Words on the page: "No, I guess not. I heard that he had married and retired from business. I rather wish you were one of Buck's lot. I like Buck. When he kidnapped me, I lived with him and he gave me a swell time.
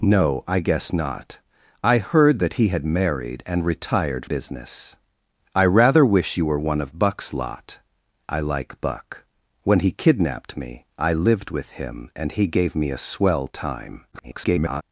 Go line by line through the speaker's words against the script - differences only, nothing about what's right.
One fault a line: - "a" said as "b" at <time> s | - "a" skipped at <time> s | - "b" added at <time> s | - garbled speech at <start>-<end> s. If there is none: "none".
- "from" skipped at 4.2 s
- garbled speech at 14.1-14.8 s